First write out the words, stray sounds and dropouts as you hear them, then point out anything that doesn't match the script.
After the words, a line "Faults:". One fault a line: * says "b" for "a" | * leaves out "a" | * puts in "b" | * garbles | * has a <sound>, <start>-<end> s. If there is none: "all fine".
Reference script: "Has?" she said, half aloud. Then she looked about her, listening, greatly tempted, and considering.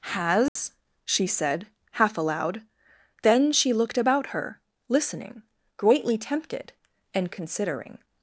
"Has?" she said, half aloud. Then she looked about her, listening, greatly tempted, and considering.
Faults:
* has a dropout, 0.5-0.6 s